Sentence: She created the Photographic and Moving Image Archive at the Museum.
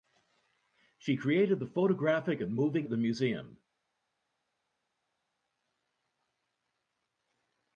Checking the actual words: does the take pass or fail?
fail